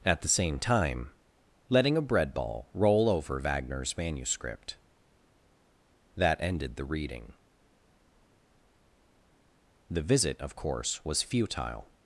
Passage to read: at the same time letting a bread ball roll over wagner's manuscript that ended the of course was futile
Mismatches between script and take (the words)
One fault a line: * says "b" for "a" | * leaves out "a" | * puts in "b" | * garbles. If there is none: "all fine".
* puts in "reading the visit"